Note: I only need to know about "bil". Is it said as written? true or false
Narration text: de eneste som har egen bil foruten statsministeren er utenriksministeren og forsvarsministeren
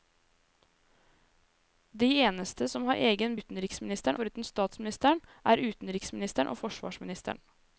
false